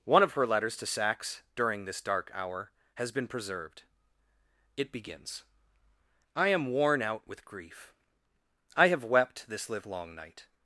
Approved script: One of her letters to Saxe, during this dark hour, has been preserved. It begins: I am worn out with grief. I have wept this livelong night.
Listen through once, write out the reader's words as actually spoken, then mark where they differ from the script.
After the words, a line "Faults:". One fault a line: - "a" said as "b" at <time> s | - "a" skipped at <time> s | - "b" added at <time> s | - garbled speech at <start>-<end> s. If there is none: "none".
One of her letters to Saxe, during this dark hour, has been preserved. It begins: I am worn out with grief. I have wept this livelong night.
Faults:
none